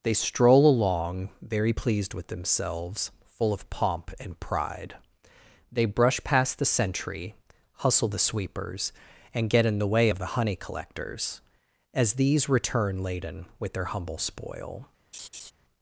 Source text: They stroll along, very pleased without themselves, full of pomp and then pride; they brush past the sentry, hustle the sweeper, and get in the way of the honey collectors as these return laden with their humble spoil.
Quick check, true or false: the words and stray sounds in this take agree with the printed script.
false